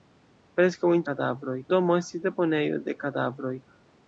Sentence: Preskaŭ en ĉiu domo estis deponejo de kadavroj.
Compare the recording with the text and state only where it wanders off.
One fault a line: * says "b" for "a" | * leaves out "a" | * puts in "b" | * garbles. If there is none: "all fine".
* says "kadavroj" for "ĉiu"